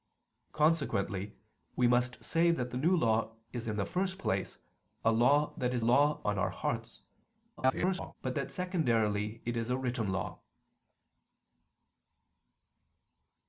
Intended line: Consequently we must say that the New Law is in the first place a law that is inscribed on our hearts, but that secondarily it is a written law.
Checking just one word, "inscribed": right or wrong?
wrong